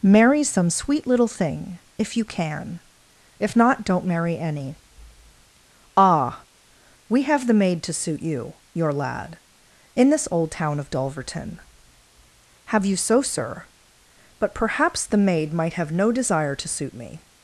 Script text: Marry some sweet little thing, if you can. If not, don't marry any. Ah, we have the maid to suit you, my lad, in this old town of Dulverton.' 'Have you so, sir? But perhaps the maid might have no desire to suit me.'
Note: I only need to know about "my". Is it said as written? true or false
false